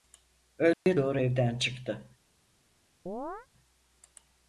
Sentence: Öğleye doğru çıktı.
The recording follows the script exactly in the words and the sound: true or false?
false